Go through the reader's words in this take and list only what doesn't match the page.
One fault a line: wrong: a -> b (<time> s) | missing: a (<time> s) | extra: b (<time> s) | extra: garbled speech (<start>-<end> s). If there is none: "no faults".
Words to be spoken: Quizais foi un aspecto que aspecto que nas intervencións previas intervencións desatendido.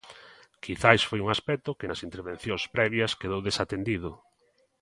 missing: aspecto que (1.9 s)
wrong: intervencións -> quedou (3.2 s)